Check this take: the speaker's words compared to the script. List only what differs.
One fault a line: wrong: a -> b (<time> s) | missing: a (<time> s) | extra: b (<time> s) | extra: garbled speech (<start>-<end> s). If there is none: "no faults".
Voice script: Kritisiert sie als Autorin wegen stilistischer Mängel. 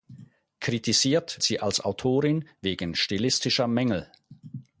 no faults